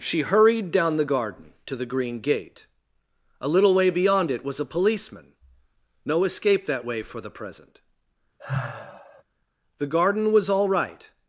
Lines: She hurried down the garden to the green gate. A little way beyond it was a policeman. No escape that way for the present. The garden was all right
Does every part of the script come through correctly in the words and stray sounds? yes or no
no